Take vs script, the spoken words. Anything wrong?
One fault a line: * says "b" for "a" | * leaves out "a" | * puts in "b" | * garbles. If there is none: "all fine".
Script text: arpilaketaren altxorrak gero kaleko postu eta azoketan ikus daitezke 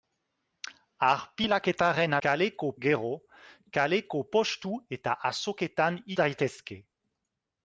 * says "kaleko" for "altxorrak"
* leaves out "ikus"